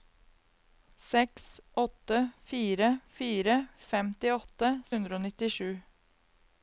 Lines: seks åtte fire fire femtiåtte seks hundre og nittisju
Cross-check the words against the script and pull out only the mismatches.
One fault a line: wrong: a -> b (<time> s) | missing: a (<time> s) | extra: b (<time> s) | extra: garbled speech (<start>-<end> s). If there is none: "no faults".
missing: seks (4.7 s)